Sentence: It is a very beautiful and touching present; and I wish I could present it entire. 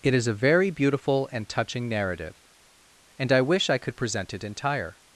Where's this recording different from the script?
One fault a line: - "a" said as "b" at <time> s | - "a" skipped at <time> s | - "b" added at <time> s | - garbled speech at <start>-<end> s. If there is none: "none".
- "present" said as "narrative" at 1.9 s